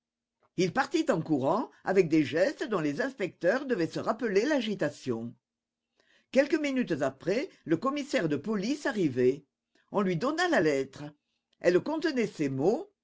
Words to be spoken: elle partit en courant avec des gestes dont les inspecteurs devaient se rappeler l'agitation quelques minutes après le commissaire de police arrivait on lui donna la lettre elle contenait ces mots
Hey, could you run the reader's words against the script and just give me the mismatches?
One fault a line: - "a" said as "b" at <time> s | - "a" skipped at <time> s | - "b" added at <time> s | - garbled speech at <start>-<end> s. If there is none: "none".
- "elle" said as "il" at 0.6 s